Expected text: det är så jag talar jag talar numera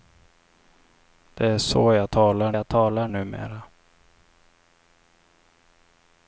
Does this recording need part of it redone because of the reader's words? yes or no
no